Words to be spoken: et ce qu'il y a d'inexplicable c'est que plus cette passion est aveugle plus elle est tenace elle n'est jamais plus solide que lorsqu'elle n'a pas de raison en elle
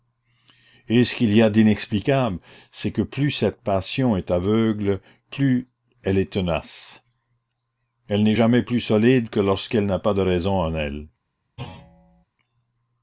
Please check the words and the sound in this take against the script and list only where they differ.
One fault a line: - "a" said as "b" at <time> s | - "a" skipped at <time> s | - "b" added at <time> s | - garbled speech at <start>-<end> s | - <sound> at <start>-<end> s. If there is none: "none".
- thud at 11.6-12.2 s